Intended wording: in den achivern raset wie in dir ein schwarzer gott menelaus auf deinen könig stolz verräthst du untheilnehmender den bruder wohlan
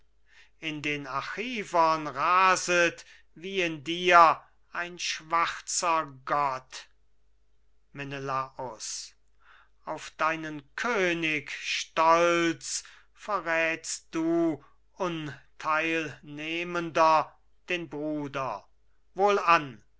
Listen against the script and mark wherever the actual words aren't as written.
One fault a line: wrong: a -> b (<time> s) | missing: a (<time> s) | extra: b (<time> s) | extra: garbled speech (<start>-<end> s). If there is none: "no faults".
no faults